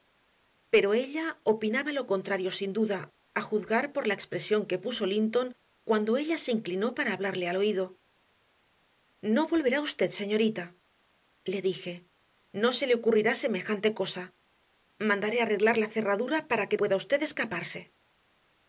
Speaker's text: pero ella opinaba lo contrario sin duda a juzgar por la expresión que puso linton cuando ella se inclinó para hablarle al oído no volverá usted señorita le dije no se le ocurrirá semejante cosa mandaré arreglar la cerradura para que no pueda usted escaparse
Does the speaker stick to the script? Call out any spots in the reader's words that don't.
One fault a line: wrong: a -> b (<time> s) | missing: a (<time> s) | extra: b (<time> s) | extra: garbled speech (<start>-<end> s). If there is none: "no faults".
missing: no (16.8 s)